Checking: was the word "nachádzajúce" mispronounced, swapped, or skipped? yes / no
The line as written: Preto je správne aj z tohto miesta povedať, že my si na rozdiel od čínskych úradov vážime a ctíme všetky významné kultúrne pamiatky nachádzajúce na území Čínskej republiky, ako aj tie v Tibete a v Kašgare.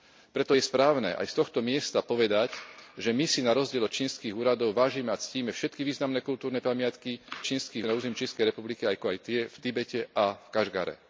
yes